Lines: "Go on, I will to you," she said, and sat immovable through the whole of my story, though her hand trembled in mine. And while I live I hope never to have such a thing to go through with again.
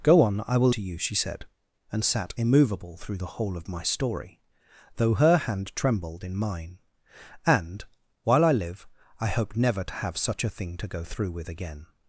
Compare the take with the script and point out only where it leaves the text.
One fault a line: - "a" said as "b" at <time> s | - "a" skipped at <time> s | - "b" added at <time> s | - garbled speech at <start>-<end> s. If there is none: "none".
none